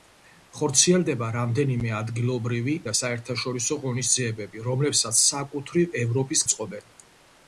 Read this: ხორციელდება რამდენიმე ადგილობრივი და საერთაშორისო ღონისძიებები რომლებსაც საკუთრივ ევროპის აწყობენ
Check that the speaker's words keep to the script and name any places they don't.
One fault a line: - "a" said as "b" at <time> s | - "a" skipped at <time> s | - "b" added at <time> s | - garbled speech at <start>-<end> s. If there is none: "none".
none